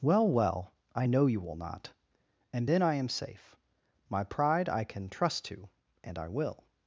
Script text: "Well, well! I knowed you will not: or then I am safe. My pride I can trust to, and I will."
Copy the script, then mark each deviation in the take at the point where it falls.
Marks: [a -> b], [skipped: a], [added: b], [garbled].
"Well, well! I [knowed -> know] you will not: [or -> and] then I am safe. My pride I can trust to, and I will."